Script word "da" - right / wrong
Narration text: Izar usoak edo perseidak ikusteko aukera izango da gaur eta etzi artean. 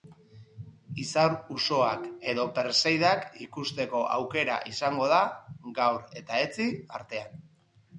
right